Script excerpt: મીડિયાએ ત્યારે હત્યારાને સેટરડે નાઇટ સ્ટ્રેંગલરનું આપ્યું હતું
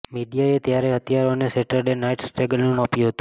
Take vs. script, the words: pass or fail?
pass